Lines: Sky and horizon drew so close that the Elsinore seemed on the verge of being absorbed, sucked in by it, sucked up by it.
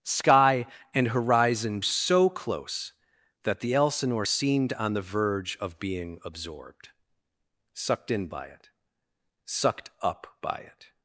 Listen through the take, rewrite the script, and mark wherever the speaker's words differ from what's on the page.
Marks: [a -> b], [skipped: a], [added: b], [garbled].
Sky and horizon [skipped: drew] so close that the Elsinore seemed on the verge of being absorbed, sucked in by it, sucked up by it.